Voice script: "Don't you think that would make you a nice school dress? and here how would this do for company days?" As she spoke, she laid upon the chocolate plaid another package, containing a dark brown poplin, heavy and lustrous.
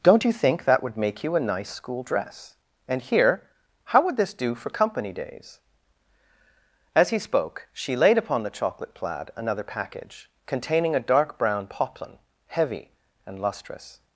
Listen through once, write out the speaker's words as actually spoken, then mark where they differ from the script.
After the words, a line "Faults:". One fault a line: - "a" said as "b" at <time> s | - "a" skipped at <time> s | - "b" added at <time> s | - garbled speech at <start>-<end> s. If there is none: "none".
"Don't you think that would make you a nice school dress? and here how would this do for company days?" As he spoke, she laid upon the chocolate plaid another package, containing a dark brown poplin, heavy and lustrous.
Faults:
- "she" said as "he" at 7.1 s